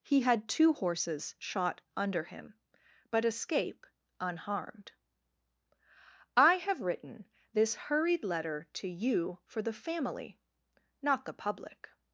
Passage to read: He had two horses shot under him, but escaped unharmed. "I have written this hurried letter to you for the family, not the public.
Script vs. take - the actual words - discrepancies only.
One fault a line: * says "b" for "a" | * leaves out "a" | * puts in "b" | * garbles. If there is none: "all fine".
* says "escape" for "escaped"